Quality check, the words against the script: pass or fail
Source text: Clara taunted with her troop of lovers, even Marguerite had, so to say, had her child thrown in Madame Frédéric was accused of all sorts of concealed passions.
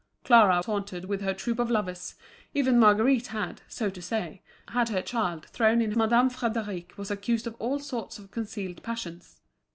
pass